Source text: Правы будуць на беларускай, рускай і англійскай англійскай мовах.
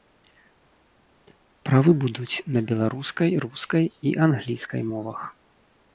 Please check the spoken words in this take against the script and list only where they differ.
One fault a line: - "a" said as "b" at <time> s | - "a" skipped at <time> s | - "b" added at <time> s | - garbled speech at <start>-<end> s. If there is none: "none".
- "англійскай" skipped at 4.8 s